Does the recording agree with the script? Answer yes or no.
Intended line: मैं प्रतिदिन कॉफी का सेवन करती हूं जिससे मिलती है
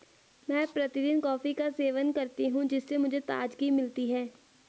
no